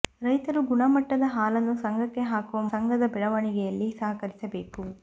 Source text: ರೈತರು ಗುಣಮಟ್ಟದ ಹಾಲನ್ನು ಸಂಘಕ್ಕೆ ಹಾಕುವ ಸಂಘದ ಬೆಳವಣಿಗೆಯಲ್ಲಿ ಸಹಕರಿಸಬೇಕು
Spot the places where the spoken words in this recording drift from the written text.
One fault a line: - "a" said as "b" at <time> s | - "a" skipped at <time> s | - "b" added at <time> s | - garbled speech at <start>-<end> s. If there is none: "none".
none